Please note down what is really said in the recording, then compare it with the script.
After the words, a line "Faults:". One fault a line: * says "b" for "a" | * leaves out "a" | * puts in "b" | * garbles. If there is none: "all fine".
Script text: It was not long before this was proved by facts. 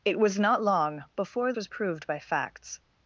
It was not long before was proved by facts.
Faults:
* leaves out "this"